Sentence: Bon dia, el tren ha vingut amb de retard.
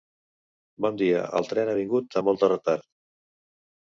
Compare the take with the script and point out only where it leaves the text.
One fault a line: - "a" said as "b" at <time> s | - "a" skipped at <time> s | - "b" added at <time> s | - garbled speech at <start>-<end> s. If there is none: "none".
- "molt" added at 2.3 s